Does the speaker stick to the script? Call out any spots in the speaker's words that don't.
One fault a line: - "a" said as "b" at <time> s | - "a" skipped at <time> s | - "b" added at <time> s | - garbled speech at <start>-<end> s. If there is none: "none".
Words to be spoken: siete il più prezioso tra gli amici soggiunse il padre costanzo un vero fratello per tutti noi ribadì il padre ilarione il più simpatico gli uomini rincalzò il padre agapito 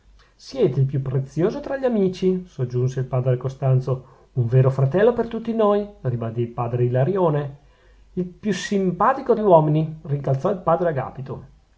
none